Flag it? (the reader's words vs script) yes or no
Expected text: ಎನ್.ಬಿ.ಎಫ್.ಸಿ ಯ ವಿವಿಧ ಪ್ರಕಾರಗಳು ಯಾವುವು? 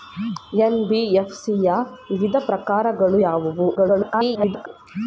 yes